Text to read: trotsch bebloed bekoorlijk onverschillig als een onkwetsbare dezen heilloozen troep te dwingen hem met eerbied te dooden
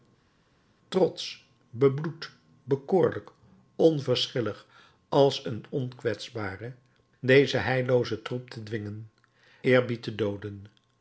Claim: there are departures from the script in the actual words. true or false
true